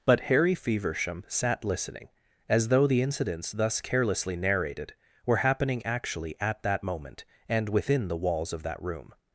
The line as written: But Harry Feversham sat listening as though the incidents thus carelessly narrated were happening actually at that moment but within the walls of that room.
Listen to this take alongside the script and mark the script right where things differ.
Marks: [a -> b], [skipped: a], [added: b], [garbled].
But Harry Feversham sat listening as though the incidents thus carelessly narrated were happening actually at that moment [but -> and] within the walls of that room.